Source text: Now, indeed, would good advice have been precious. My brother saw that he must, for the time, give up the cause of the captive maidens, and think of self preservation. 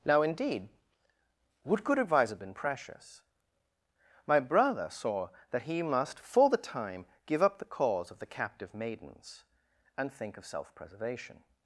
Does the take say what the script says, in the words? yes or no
yes